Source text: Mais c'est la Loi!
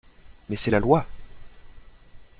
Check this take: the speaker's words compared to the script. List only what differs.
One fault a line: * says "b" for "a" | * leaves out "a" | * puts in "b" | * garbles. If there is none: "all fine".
all fine